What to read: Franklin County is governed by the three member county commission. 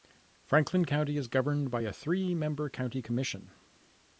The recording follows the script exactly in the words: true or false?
false